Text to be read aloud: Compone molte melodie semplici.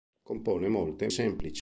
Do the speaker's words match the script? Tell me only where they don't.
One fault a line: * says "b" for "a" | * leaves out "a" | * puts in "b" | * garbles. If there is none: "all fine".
* leaves out "melodie"